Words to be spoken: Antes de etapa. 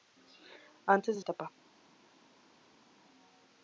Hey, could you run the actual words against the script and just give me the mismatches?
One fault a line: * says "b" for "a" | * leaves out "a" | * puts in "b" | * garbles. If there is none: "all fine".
all fine